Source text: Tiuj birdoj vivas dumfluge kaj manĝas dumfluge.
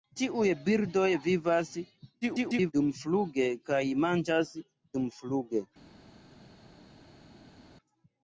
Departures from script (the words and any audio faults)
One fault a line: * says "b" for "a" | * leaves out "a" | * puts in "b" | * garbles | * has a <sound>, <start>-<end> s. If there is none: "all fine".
* garbles